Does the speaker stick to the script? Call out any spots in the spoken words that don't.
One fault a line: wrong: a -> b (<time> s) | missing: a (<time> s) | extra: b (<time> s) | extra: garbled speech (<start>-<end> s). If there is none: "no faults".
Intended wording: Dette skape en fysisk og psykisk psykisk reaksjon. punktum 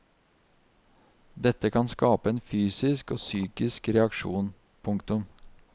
extra: kan (1.7 s)
missing: psykisk (3.9 s)